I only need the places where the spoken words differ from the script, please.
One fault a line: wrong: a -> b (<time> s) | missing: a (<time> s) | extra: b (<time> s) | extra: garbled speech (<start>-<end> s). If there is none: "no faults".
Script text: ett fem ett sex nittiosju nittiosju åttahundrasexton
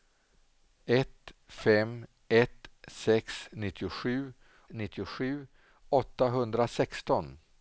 no faults